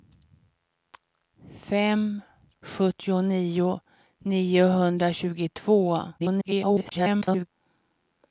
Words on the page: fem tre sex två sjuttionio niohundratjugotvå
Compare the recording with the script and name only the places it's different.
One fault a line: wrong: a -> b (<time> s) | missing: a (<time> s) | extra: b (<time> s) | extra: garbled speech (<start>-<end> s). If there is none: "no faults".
missing: tre sex två (2.2 s)
extra: garbled speech (6.2-7.5 s)